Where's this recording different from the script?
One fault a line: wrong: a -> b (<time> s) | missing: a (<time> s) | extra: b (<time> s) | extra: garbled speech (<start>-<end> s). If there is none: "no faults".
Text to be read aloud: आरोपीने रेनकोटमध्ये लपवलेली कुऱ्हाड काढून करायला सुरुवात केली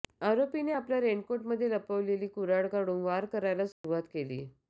extra: आपल्या (0.7 s)
extra: वार (3.0 s)